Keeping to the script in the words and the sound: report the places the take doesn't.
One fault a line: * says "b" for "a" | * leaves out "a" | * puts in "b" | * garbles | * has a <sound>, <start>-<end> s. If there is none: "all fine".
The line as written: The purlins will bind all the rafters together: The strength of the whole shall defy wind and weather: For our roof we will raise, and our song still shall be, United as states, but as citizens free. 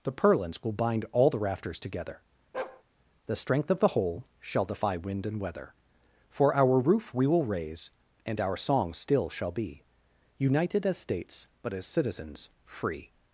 * has a bark, 2.5-2.8 s